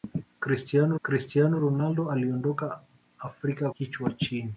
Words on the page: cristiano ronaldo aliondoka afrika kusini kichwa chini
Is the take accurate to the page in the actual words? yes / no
no